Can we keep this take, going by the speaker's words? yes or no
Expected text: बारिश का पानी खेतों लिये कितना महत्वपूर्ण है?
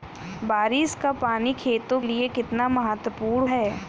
yes